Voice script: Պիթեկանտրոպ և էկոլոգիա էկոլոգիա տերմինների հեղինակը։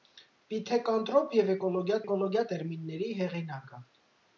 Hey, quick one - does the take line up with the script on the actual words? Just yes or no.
yes